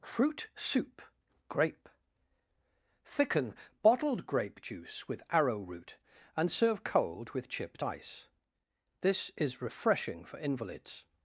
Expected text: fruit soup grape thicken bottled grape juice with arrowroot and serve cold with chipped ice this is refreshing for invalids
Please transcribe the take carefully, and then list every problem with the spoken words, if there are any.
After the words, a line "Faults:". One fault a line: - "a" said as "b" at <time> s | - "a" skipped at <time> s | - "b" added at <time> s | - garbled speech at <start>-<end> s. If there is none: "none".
fruit soup grape thicken bottled grape juice with arrowroot and serve cold with chipped ice this is refreshing for invalids
Faults:
none